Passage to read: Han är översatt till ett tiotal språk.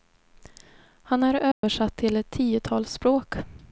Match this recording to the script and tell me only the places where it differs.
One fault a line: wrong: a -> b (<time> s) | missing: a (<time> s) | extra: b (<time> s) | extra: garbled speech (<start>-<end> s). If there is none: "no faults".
no faults